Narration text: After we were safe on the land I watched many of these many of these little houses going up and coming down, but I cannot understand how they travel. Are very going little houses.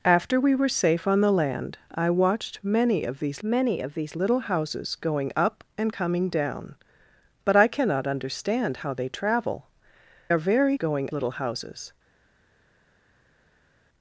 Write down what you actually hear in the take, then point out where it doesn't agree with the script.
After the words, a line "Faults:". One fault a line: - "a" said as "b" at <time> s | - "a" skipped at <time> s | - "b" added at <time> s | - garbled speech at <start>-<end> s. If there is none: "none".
After we were safe on the land I watched many of these many of these little houses going up and coming down, but I cannot understand how they travel. Are very going little houses.
Faults:
none